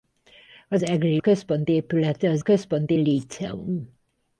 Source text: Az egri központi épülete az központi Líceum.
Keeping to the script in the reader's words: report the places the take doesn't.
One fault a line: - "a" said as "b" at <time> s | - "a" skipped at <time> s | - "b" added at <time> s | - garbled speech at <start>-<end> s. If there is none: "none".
none